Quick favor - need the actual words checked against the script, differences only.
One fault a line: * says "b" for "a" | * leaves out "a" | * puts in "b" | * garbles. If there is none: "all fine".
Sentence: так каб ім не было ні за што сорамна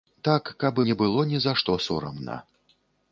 * leaves out "ім"